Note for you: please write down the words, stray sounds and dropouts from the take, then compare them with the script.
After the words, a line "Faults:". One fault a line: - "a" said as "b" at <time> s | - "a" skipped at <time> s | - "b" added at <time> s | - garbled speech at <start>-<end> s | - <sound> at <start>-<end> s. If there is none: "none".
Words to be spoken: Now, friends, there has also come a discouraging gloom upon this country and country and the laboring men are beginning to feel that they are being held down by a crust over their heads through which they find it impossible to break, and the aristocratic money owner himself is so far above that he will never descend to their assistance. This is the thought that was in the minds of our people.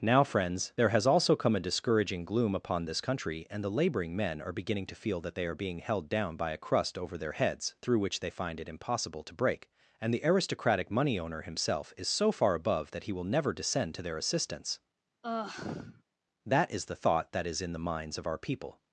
Now, friends, there has also come a discouraging gloom upon this country and the laboring men are beginning to feel that they are being held down by a crust over their heads through which they find it impossible to break, and the aristocratic money owner himself is so far above that he will never descend to their assistance. That is the thought that is in the minds of our people.
Faults:
- "country and" skipped at 3.6 s
- sigh at 15.2-16.0 s
- "This" said as "That" at 16.4 s
- "was" said as "is" at 17.5 s